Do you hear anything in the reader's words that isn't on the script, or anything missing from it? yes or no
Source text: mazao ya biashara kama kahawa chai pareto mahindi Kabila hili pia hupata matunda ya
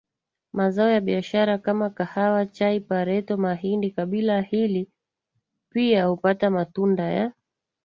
no